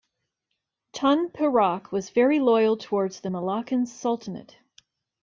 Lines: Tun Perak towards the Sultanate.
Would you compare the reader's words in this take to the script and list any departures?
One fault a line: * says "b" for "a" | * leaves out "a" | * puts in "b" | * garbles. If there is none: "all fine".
* puts in "was very loyal"
* puts in "Malaccan"